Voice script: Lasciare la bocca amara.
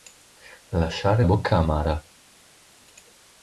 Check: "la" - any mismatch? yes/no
yes